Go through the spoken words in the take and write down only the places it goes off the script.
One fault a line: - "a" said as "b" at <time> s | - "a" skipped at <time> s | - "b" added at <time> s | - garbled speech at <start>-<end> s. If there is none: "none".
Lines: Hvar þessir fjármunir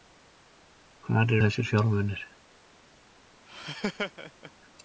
none